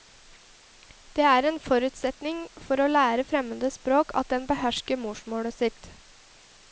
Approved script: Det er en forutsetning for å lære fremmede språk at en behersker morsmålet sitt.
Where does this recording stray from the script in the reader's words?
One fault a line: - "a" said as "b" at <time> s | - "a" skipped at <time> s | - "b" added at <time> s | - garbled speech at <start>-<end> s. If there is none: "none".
none